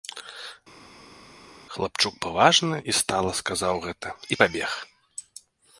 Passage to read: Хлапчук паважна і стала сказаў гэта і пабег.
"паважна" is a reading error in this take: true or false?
false